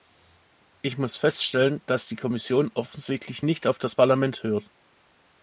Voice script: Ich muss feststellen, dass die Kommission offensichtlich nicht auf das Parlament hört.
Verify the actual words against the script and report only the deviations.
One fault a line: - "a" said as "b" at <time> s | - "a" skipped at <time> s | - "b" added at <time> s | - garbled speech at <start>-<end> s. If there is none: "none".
none